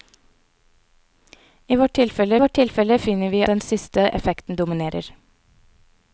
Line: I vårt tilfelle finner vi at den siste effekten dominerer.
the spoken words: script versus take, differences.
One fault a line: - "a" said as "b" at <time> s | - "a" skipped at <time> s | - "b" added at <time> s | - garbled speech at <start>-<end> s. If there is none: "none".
- "vårt tilfelle" added at 2.4 s
- "at" skipped at 3.4 s